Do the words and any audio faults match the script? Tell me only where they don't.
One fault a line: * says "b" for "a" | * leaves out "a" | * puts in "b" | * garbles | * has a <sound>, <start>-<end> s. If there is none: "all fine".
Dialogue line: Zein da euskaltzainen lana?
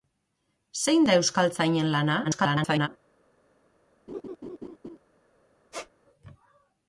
* garbles
* has a laugh, 4.1-5.0 s
* has a squeak, 5.7-5.9 s